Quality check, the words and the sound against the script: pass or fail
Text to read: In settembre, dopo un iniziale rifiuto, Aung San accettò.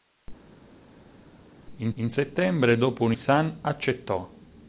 fail